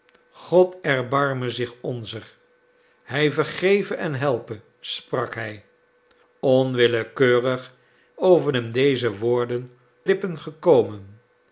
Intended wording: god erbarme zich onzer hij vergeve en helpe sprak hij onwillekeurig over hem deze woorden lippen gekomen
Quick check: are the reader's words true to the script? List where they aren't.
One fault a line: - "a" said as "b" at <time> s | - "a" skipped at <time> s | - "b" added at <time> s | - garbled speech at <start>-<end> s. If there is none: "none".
none